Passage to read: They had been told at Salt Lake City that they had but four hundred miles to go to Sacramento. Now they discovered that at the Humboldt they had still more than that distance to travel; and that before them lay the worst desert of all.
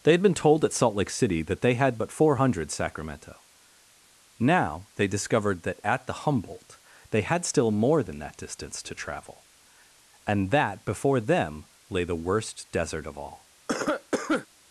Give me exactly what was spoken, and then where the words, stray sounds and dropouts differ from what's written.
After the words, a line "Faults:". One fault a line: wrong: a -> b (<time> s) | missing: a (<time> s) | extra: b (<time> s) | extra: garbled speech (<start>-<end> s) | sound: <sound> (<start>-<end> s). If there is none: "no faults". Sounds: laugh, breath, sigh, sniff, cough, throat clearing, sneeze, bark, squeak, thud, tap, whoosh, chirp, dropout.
They had been told at Salt Lake City that they had but four hundred Sacramento. Now they discovered that at the Humboldt they had still more than that distance to travel; and that before them lay the worst desert of all.
Faults:
missing: miles to go to (2.7 s)
sound: cough (13.7-14.5 s)